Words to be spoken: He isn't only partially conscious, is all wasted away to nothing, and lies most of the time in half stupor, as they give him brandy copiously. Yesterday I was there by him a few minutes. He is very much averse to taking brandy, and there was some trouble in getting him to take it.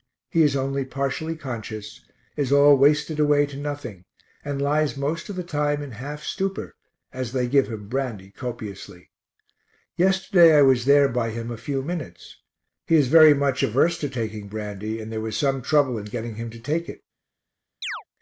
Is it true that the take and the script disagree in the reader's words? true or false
true